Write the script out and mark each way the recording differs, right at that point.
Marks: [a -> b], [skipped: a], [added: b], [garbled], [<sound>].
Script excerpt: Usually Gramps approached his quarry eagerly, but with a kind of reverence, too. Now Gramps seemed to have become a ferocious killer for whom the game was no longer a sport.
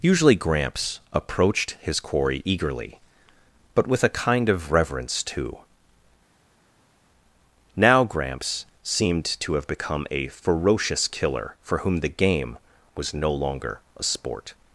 Usually Gramps approached his quarry eagerly, but with a kind of reverence, too. Now Gramps seemed to have become a ferocious killer for whom the game was no longer a sport.